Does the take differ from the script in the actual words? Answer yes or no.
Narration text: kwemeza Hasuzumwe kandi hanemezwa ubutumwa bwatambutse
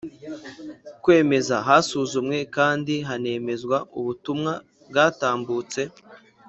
no